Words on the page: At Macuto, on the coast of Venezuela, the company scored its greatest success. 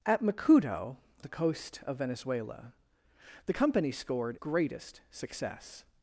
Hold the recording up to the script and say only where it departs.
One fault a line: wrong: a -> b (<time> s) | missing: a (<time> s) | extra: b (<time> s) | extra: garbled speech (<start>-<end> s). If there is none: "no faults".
missing: on (0.9 s)
missing: its (4.4 s)